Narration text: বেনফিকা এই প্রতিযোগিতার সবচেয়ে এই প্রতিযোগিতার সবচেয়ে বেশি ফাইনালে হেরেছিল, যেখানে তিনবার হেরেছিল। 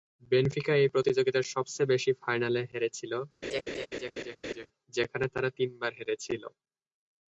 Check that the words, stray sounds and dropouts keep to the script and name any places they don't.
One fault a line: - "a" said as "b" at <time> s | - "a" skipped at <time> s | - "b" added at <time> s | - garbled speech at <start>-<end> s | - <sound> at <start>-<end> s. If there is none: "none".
- "এই প্রতিযোগিতার সবচেয়ে" skipped at 1.9 s
- laugh at 3.4-4.7 s
- "তারা" added at 5.3 s